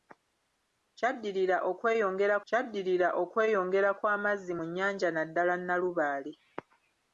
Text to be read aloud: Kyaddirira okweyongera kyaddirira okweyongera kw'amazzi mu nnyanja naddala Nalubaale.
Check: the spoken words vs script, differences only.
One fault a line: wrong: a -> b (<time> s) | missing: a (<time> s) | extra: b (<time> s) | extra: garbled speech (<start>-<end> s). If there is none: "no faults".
no faults